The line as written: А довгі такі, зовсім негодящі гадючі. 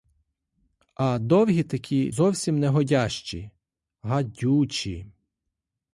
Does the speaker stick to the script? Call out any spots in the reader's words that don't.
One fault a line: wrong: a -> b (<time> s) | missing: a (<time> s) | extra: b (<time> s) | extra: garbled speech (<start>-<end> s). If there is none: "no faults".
no faults